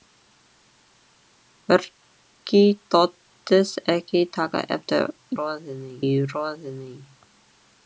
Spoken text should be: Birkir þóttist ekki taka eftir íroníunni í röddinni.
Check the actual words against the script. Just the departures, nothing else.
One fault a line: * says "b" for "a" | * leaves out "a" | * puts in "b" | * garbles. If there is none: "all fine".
* says "röddinni" for "íroníunni"